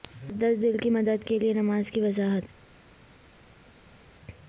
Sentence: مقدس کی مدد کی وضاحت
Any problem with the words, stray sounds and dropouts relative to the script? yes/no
yes